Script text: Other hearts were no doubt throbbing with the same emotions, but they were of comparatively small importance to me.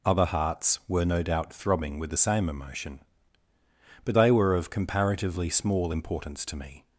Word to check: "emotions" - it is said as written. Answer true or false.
false